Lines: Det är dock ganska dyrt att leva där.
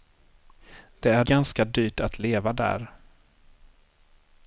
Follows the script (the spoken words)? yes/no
no